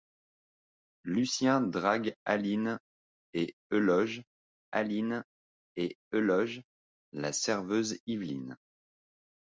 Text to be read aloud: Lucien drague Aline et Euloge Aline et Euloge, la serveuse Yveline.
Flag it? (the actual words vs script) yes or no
no